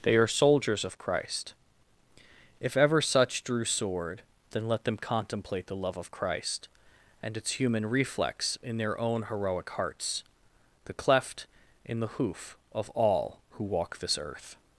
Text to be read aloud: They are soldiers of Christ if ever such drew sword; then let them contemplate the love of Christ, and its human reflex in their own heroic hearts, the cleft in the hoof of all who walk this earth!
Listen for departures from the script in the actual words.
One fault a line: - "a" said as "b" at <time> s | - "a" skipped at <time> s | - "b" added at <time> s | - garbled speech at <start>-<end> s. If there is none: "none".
none